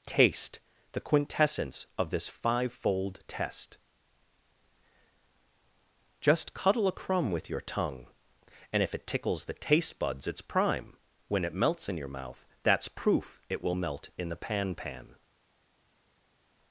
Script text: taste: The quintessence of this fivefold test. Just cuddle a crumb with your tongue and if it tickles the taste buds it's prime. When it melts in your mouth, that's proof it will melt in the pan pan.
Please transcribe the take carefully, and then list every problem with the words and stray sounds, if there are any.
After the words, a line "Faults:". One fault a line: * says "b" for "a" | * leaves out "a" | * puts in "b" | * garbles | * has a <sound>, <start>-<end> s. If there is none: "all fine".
taste: The quintessence of this fivefold test. Just cuddle a crumb with your tongue and if it tickles the taste buds it's prime. When it melts in your mouth, that's proof it will melt in the pan pan.
Faults:
all fine